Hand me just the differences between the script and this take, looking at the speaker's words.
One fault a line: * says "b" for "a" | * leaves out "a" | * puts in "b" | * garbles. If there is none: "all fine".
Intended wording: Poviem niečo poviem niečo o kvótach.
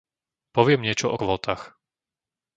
* leaves out "poviem niečo"